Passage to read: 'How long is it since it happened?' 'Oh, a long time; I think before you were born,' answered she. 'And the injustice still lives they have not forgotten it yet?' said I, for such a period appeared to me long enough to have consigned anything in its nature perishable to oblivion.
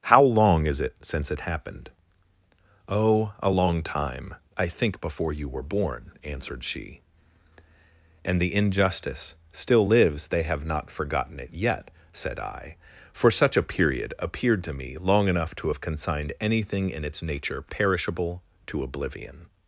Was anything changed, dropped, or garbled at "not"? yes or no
no